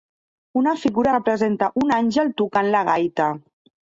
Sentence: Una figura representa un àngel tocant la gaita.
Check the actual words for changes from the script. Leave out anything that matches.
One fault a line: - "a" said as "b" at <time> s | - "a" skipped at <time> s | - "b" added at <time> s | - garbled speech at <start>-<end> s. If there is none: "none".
none